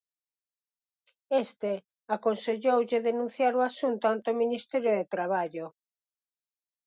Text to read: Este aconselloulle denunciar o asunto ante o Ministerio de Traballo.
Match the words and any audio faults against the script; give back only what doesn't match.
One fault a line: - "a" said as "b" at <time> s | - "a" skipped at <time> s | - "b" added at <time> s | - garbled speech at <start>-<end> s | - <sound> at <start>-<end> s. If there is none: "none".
none